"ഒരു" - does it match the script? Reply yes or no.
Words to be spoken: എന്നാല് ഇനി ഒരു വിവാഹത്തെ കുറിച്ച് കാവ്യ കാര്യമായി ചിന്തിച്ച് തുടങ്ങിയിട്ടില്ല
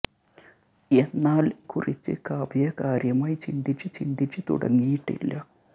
no